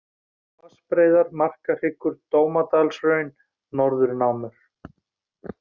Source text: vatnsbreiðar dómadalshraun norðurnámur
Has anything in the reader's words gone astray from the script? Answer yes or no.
yes